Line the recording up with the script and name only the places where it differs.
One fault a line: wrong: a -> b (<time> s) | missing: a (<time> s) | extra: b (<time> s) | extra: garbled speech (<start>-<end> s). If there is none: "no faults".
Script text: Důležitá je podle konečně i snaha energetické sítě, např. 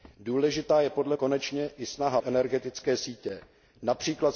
no faults